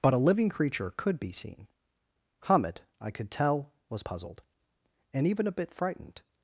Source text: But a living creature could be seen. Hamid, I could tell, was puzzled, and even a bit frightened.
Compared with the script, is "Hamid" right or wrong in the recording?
right